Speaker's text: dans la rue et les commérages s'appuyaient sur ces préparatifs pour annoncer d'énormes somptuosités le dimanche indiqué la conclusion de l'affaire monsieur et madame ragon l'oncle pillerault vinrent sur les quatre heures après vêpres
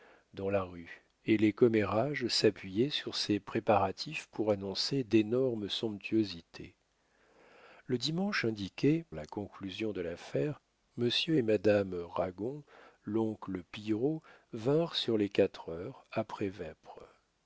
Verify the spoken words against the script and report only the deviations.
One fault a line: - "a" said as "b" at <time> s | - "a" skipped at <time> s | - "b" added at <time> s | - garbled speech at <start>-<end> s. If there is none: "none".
none